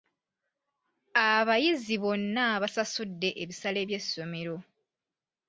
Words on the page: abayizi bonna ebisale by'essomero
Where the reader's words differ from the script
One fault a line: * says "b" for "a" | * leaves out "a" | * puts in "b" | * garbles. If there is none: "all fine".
* puts in "basasudde"